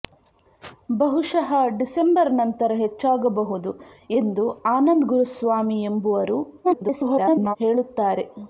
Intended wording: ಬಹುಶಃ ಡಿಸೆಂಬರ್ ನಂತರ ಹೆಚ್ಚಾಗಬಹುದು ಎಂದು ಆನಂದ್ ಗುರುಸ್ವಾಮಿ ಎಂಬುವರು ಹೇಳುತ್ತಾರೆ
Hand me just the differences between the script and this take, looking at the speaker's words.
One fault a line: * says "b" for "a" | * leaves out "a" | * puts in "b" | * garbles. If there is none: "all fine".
* garbles